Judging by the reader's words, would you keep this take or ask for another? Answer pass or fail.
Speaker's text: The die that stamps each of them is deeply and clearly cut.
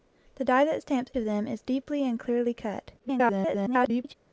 fail